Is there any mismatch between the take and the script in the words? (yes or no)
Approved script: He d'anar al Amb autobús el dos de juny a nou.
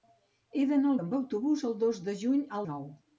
no